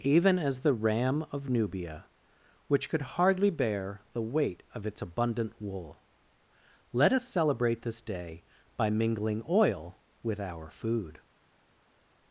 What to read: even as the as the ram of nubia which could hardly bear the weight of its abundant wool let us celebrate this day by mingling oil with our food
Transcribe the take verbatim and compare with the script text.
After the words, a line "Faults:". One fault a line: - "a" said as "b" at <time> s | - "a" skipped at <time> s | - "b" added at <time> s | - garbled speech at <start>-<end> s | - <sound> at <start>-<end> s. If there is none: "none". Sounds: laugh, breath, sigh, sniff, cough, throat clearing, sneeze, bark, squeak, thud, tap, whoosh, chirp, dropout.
even as the ram of nubia which could hardly bear the weight of its abundant wool let us celebrate this day by mingling oil with our food
Faults:
- "as the" skipped at 0.7 s